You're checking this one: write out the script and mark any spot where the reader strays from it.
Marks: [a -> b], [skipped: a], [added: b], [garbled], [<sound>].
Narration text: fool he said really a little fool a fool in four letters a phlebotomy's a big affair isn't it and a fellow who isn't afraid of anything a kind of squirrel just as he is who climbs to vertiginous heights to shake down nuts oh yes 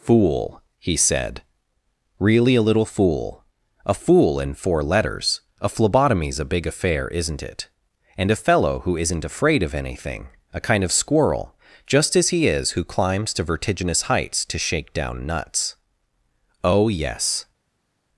fool he said really a little fool a fool in four letters a phlebotomy's a big affair isn't it and a fellow who isn't afraid of anything a kind of squirrel just as he is who climbs to vertiginous heights to shake down nuts oh yes